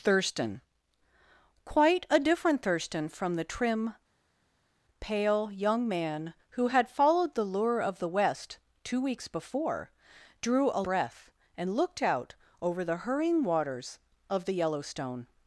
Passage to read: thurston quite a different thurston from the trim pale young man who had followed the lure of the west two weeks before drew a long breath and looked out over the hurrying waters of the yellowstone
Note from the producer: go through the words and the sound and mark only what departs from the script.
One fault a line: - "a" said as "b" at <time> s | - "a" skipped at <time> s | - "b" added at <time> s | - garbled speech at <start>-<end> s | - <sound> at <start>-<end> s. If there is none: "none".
- "long" skipped at 10.8 s